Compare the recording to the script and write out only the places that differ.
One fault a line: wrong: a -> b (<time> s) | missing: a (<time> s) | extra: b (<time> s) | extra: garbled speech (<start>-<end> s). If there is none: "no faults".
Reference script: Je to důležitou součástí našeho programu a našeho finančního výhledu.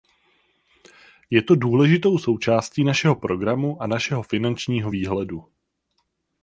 no faults